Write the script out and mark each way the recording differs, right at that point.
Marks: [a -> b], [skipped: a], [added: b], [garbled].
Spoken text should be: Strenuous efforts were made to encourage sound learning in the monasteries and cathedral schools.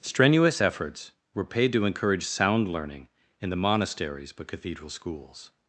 Strenuous efforts were [made -> paid] to encourage sound learning in the monasteries [and -> but] cathedral schools.